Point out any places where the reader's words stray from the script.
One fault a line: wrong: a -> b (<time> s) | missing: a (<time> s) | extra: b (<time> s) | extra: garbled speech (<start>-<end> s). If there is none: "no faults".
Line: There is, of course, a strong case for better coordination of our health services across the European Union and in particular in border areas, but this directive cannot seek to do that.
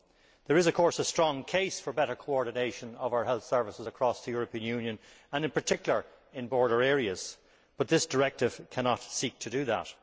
no faults